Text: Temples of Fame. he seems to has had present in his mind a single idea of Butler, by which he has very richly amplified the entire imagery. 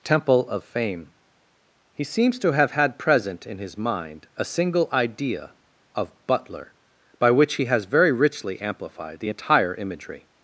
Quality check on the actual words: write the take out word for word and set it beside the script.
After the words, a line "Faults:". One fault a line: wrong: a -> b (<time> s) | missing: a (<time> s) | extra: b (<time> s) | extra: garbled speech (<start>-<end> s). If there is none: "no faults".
Temple of Fame. he seems to have had present in his mind a single idea of Butler, by which he has very richly amplified the entire imagery.
Faults:
wrong: Temples -> Temple (0.0 s)
wrong: has -> have (2.5 s)